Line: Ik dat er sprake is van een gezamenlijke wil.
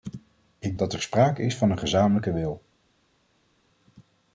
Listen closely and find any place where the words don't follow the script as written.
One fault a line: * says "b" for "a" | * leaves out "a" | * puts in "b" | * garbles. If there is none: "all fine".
all fine